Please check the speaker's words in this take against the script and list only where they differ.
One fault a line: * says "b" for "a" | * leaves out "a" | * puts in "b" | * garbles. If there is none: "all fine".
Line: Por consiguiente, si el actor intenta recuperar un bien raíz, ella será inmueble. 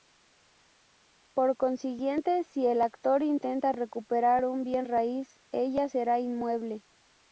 all fine